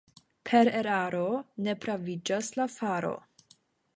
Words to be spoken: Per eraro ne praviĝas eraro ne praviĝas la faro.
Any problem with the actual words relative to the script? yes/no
yes